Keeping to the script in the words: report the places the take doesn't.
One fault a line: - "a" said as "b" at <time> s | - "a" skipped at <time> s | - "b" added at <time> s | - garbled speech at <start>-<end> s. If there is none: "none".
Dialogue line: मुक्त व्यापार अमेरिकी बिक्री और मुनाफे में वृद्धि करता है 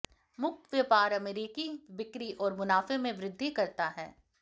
none